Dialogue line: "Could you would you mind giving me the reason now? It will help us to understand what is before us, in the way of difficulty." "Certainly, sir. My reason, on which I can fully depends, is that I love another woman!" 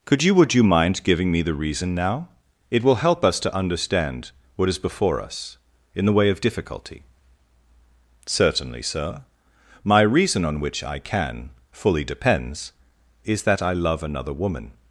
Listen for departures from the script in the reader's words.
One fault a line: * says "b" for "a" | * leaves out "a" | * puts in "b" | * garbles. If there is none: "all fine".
all fine